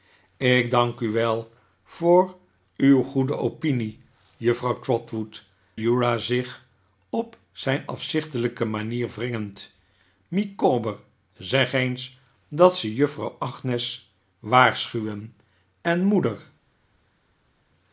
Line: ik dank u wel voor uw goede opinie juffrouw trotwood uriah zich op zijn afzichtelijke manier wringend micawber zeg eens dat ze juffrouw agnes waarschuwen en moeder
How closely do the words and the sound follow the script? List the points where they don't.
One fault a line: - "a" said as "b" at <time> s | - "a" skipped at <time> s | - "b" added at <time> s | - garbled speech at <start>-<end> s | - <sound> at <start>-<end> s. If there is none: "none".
none